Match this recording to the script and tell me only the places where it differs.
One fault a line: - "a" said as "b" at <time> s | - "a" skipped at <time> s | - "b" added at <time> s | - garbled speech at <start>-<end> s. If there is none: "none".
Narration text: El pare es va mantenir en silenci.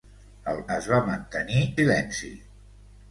- "pare" skipped at 0.6 s
- "en" skipped at 1.6 s